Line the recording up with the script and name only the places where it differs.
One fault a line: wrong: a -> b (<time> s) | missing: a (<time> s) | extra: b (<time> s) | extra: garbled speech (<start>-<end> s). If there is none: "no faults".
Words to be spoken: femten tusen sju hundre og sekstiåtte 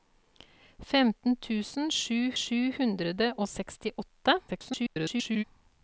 extra: sju (2.4 s)
extra: garbled speech (4.5-5.4 s)